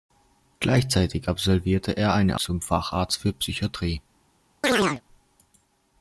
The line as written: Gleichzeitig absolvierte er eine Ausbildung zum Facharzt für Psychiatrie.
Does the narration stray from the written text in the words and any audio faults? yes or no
yes